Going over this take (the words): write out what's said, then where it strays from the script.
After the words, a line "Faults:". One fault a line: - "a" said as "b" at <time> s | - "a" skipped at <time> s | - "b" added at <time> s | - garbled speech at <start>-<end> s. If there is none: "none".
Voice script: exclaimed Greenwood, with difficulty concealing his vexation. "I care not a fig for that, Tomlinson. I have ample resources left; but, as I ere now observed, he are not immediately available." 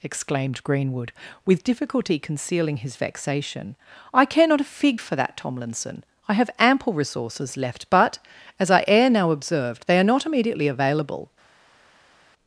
exclaimed Greenwood, with difficulty concealing his vexation. "I care not a fig for that, Tomlinson. I have ample resources left; but, as I ere now observed, they are not immediately available."
Faults:
- "he" said as "they" at 9.9 s